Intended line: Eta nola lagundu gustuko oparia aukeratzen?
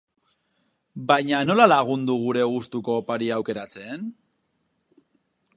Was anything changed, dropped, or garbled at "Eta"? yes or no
yes